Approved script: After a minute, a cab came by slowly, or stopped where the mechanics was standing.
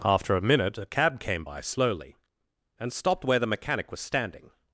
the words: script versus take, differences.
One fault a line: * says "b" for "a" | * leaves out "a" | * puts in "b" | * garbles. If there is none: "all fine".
* says "and" for "or"
* says "mechanic" for "mechanics"